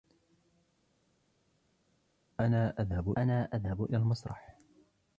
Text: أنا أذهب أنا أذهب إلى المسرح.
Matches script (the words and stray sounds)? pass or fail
pass